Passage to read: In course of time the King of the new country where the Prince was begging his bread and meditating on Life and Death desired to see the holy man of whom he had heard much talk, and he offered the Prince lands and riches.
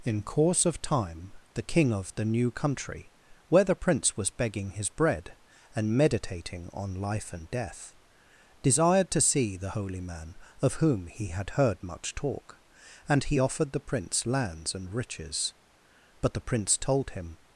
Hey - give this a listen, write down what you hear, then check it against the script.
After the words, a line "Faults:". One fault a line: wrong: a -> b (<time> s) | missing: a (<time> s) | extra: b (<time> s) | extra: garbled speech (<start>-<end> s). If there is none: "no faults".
In course of time the King of the new country where the Prince was begging his bread and meditating on Life and Death desired to see the holy man of whom he had heard much talk, and he offered the Prince lands and riches. But the Prince told him
Faults:
extra: But the Prince told him (16.2 s)